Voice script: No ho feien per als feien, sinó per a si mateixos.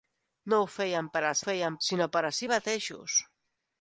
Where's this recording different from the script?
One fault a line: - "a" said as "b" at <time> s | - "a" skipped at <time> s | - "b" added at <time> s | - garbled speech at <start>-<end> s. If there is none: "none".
none